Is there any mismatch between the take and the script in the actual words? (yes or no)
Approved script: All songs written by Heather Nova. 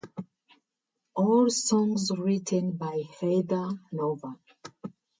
no